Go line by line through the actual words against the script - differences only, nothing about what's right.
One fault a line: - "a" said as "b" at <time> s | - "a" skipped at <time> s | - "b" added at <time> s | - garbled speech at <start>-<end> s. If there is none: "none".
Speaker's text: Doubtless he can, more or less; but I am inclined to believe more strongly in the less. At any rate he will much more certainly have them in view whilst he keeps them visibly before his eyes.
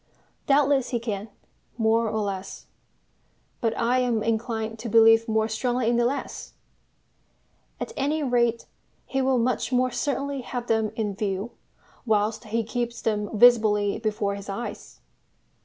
none